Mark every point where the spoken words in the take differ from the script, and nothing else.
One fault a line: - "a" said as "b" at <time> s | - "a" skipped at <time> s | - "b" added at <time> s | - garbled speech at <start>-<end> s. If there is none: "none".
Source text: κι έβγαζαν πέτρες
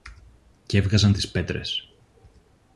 - "τις" added at 1.1 s